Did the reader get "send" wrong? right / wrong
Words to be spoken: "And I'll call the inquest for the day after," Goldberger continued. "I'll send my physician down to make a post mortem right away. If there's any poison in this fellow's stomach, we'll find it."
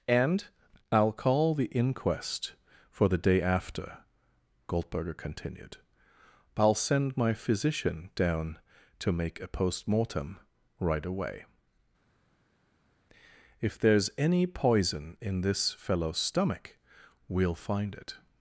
right